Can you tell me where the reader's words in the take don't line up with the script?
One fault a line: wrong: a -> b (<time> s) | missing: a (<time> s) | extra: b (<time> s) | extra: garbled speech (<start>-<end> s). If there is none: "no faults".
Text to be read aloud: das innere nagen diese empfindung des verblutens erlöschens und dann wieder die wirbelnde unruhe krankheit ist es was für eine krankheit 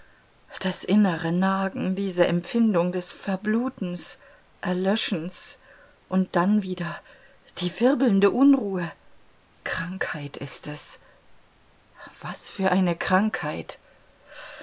no faults